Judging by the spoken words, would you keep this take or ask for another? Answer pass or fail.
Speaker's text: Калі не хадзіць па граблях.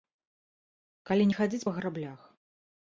pass